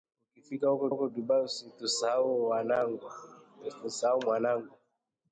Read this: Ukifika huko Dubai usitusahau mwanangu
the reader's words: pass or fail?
fail